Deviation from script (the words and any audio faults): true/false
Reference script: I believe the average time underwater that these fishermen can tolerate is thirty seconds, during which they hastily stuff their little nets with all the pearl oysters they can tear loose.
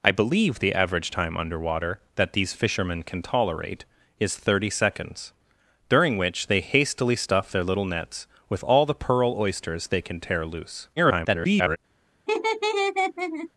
true